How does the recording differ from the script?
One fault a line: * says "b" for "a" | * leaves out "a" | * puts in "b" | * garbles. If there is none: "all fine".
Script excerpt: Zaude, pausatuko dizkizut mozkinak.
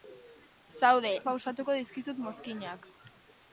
all fine